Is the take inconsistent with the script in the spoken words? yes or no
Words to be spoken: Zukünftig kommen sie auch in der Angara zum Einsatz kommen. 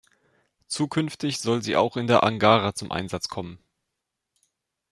yes